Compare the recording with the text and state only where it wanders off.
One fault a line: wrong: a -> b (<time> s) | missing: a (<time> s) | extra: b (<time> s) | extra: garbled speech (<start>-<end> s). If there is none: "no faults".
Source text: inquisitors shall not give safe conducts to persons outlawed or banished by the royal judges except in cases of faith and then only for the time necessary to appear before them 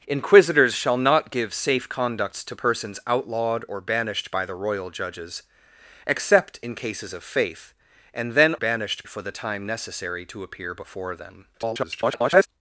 wrong: only -> banished (8.5 s)
extra: garbled speech (11.5-12.5 s)